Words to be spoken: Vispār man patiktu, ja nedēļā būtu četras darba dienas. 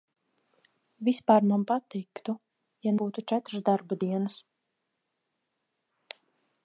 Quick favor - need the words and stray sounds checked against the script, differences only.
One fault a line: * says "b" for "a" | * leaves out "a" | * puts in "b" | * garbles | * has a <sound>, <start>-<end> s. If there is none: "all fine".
* leaves out "nedēļā"